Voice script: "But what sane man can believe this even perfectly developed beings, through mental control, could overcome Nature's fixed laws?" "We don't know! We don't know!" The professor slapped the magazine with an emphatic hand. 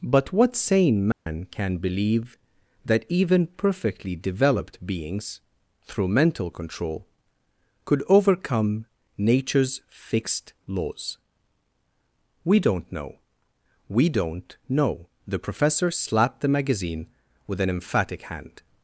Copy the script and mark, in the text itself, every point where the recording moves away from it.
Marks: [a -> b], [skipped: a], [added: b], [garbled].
"But what sane man can believe [this -> that] even perfectly developed beings, through mental control, could overcome Nature's fixed laws?" "We don't know! We don't know!" The professor slapped the magazine with an emphatic hand.